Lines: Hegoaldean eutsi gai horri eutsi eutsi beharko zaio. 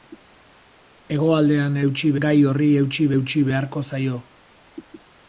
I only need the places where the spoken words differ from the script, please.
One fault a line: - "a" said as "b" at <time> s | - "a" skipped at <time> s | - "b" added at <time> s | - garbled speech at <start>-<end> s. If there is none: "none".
none